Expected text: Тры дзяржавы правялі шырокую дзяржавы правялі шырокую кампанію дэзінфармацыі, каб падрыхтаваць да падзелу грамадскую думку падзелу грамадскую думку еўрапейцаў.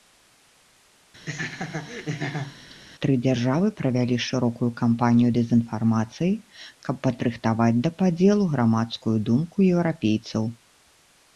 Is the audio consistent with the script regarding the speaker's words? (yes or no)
no